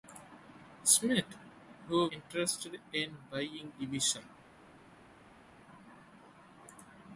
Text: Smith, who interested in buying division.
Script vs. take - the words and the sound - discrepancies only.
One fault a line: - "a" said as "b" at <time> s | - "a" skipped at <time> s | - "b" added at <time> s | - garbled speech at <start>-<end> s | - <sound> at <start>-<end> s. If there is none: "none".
none